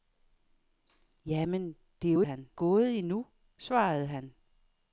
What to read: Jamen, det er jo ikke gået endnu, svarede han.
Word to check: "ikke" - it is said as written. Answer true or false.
false